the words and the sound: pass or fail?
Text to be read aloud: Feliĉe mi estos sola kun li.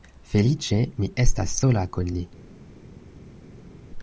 fail